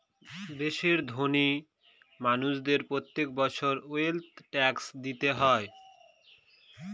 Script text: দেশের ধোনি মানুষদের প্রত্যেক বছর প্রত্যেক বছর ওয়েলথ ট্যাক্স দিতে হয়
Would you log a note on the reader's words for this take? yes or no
yes